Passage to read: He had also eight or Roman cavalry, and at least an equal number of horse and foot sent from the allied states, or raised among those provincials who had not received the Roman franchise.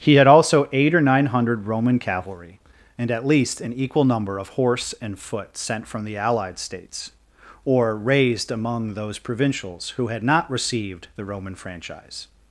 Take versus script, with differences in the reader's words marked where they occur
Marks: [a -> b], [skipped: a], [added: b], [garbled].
He had also eight or [added: nine hundred] Roman cavalry, and at least an equal number of horse and foot sent from the allied states, or raised among those provincials who had not received the Roman franchise.